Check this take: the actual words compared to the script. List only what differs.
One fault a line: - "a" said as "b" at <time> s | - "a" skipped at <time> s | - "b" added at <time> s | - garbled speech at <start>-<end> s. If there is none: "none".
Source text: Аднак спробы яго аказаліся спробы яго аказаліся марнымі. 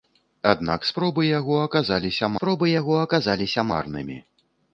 none